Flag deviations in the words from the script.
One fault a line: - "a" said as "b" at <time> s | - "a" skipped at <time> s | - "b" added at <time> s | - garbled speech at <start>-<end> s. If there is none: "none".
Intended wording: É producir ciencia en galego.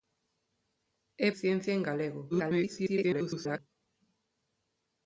- "producir" skipped at 1.3 s
- garbled speech at 2.3-3.6 s